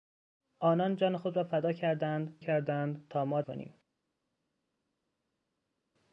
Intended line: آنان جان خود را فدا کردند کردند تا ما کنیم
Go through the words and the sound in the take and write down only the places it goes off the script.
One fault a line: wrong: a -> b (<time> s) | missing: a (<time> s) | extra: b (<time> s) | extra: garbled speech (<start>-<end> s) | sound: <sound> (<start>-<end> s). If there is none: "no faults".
no faults